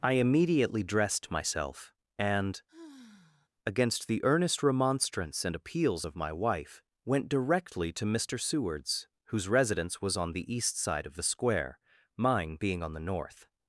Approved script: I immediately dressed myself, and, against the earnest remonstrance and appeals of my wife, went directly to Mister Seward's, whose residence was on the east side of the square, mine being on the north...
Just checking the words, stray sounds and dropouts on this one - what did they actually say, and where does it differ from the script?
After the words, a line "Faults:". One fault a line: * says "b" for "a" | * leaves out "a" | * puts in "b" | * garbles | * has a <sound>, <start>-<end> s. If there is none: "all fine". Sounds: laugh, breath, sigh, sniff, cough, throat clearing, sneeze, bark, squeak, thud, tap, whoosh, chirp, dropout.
I immediately dressed myself, and, against the earnest remonstrance and appeals of my wife, went directly to Mister Seward's, whose residence was on the east side of the square, mine being on the north...
Faults:
* has a sigh, 2.7-3.5 s